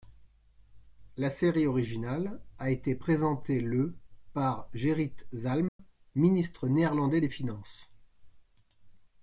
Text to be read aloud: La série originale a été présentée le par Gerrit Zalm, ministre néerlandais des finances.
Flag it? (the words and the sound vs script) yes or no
yes